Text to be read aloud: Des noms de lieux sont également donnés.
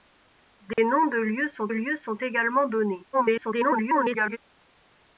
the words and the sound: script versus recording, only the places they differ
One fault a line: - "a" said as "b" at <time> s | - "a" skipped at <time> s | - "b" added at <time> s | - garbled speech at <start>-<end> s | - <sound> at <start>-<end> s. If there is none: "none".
- dropout at 0.7-0.8 s
- "lieux sont" added at 1.7 s
- garbled speech at 3.1-4.4 s